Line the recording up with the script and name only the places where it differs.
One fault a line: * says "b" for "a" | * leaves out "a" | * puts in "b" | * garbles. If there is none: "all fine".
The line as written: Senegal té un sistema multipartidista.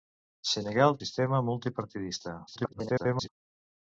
* leaves out "té un"
* garbles